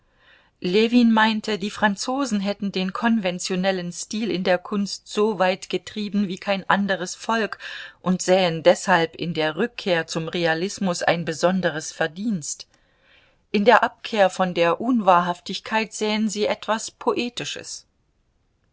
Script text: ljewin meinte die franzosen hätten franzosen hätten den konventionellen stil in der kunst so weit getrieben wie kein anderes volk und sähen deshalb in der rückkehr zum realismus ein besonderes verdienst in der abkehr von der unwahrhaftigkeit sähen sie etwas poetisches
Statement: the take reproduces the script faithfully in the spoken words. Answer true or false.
false